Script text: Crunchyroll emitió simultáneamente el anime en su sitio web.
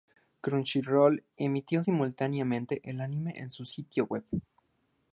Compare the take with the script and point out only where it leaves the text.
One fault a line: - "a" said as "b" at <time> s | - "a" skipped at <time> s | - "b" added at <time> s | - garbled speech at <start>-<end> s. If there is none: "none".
none